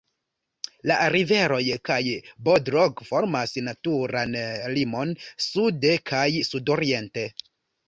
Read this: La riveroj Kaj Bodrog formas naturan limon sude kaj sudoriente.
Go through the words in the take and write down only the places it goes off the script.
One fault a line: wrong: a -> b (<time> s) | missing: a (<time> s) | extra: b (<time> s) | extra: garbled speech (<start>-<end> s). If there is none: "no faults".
no faults